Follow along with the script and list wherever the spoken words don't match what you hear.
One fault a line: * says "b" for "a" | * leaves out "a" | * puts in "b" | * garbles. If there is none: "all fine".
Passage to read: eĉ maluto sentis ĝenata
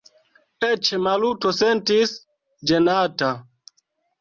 all fine